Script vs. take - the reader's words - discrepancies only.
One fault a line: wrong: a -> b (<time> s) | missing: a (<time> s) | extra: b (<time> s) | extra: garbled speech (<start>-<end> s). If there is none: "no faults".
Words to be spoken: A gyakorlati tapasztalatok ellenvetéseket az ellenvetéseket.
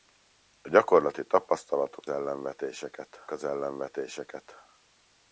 no faults